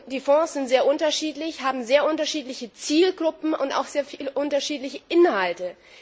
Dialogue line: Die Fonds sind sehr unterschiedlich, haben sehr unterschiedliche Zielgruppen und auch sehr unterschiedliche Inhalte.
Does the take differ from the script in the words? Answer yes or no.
no